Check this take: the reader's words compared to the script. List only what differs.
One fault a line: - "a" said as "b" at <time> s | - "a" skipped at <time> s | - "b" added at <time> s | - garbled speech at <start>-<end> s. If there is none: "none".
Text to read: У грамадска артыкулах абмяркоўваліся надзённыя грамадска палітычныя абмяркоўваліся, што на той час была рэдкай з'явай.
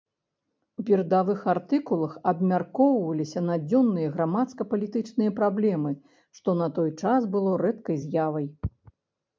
- "грамадска" said as "перадавых" at 0.9 s
- "абмяркоўваліся" said as "праблемы" at 5.4 s
- "была" said as "было" at 7.4 s